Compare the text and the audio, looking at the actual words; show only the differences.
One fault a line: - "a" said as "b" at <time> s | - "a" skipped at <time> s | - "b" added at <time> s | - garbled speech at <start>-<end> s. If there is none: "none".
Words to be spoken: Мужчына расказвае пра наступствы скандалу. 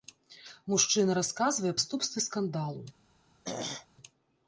- "пра" skipped at 1.7 s